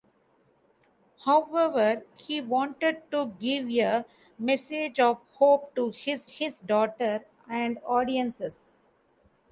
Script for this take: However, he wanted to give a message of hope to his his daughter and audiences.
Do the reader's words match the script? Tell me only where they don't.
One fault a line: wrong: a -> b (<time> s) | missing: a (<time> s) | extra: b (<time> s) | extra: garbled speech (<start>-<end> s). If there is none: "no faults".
no faults